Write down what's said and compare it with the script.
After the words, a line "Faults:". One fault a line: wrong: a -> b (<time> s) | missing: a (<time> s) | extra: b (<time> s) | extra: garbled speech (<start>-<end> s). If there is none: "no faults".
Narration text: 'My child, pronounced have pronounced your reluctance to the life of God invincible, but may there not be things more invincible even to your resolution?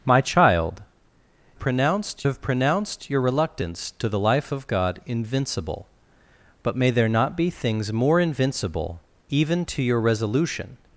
'My child, pronounced have pronounced your reluctance to the life of God invincible, but may there not be things more invincible even to your resolution?
Faults:
no faults